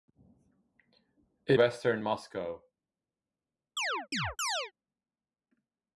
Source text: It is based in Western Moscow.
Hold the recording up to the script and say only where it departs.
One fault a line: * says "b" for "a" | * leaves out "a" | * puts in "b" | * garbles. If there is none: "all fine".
* leaves out "is based in"